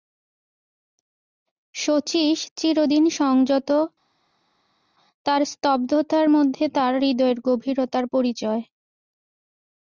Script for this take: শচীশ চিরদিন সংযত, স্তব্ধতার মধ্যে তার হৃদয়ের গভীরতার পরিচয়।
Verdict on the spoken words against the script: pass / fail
fail